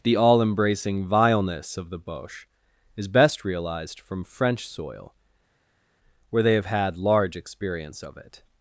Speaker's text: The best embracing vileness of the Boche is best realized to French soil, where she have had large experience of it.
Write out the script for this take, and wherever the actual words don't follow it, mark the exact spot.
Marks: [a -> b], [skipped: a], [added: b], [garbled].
The [best -> all] embracing vileness of the Boche is best realized [to -> from] French soil, where [she -> they] have had large experience of it.